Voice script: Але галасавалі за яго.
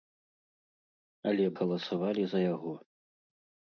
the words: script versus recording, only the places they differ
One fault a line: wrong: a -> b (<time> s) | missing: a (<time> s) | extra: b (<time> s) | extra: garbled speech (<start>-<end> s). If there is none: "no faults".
no faults